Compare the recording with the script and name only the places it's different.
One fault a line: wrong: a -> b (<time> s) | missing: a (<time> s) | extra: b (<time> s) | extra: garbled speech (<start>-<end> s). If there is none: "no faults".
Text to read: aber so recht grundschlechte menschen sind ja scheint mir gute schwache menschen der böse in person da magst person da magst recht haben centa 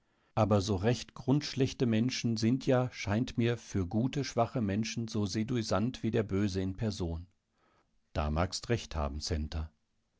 extra: für (3.6 s)
extra: so seduisant wie (5.1 s)
missing: person da magst (8.7 s)